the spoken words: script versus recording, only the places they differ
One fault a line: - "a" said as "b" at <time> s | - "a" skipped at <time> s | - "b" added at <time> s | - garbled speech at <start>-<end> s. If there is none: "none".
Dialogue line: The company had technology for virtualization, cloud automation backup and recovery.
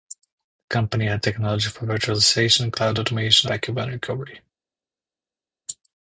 none